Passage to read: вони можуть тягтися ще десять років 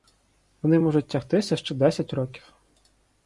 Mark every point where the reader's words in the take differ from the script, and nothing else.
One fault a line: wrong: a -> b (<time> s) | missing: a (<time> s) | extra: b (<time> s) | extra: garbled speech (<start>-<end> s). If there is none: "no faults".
no faults